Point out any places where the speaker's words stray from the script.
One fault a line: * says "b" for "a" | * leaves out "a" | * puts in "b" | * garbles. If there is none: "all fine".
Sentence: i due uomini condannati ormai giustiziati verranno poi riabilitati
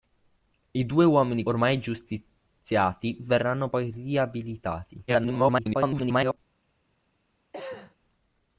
* leaves out "condannati"
* garbles